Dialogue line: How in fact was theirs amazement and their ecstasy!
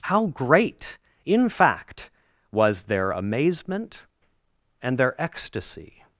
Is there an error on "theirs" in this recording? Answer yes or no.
yes